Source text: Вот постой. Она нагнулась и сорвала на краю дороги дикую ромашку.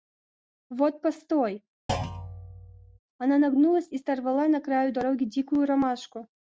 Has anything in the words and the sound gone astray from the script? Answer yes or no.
yes